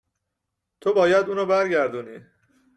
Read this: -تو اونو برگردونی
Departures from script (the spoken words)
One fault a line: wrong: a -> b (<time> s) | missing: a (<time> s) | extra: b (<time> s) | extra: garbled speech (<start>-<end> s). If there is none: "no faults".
extra: باید (0.9 s)